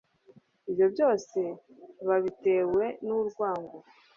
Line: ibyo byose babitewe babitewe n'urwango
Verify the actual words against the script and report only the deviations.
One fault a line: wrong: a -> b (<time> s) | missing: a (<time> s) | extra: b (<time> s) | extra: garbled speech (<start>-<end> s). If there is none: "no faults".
missing: babitewe (2.8 s)